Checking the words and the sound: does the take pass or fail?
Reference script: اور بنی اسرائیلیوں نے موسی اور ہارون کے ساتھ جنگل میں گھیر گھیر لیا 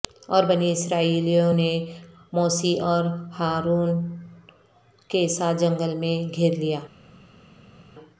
fail